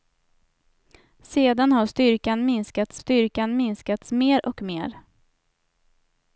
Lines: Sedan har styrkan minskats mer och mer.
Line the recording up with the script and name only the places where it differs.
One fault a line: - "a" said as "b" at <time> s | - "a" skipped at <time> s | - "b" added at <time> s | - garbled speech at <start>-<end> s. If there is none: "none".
- "styrkan minskats" added at 3.0 s